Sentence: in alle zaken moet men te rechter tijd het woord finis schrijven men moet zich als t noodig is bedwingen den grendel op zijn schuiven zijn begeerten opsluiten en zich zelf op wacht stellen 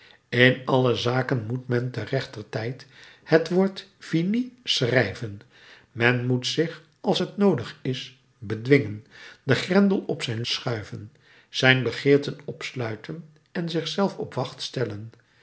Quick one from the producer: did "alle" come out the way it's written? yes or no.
yes